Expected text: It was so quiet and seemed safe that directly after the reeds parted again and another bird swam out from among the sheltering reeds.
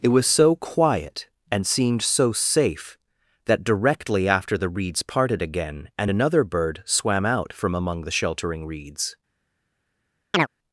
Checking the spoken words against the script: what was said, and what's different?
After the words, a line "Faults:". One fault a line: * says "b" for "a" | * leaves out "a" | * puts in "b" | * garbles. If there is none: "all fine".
It was so quiet and seemed so safe that directly after the reeds parted again and another bird swam out from among the sheltering reeds.
Faults:
* puts in "so"